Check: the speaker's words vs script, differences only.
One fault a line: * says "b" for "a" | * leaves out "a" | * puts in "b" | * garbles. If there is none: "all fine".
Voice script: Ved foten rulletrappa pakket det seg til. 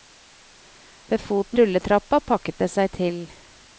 all fine